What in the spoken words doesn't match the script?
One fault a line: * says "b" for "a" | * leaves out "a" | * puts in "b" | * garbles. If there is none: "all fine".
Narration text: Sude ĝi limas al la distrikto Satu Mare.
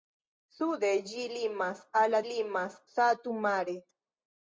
* says "limas" for "distrikto"